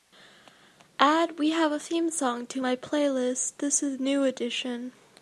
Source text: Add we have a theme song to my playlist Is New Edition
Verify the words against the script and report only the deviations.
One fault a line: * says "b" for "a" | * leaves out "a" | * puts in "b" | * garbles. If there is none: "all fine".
* puts in "This"